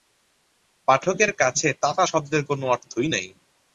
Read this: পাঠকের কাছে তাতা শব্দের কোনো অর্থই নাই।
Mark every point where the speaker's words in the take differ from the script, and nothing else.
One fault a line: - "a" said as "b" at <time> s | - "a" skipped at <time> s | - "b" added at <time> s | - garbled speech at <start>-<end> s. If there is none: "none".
none